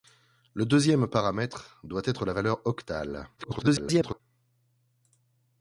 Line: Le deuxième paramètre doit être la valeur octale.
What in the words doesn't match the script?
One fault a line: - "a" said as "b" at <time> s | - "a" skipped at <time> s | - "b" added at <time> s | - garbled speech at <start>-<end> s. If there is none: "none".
- garbled speech at 3.4-4.2 s